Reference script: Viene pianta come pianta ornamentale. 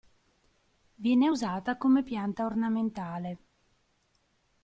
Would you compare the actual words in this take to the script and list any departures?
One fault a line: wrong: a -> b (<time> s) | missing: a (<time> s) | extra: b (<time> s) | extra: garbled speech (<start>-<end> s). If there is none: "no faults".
wrong: pianta -> usata (1.3 s)